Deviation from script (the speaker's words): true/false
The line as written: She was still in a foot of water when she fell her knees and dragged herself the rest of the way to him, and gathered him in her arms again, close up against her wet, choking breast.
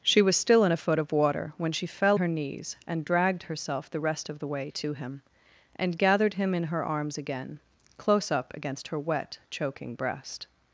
false